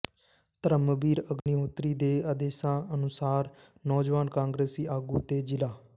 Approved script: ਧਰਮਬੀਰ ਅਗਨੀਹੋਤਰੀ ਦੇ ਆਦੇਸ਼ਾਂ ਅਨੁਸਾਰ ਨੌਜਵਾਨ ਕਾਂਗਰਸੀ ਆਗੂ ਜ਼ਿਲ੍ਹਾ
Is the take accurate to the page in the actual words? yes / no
no